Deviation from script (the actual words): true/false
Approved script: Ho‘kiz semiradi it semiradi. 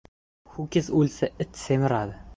true